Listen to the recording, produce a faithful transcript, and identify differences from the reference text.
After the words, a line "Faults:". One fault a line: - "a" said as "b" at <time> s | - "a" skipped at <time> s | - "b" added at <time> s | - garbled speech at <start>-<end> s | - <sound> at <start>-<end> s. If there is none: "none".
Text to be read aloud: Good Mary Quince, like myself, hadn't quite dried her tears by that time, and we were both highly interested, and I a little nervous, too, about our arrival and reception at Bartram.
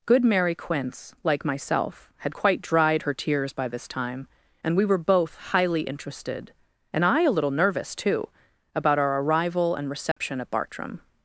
Good Mary Quince, like myself, had quite dried her tears by this time, and we were both highly interested, and I a little nervous, too, about our arrival and reception at Bartram.
Faults:
- "hadn't" said as "had" at 2.2 s
- "that" said as "this" at 3.7 s
- dropout at 10.1-10.2 s